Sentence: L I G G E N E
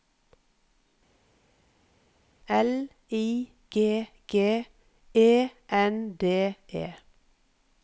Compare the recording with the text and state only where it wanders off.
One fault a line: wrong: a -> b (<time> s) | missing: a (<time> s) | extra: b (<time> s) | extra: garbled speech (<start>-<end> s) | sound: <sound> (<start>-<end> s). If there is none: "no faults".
extra: D (6.2 s)